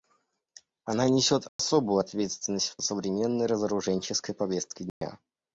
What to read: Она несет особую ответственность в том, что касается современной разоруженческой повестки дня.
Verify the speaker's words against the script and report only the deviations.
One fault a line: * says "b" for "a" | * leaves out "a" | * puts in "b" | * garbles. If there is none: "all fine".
* leaves out "том что касается"